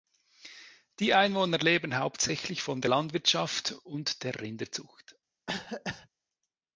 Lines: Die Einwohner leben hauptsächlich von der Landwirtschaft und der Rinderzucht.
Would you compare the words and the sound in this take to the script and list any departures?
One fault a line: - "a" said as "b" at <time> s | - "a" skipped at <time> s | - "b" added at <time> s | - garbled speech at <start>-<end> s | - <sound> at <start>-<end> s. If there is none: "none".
- cough at 5.5-6.1 s